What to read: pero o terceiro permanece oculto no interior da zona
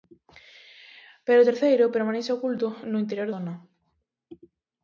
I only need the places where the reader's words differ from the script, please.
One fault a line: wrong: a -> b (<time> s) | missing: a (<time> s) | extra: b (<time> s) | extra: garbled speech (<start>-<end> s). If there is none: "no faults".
missing: da (3.3 s)